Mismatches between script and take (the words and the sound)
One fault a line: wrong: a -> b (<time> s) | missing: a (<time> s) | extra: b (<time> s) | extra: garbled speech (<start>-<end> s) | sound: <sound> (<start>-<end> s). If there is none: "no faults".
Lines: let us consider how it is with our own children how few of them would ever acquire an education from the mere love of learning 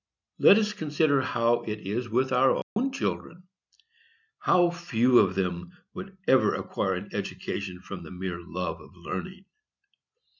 sound: dropout (2.6-2.8 s)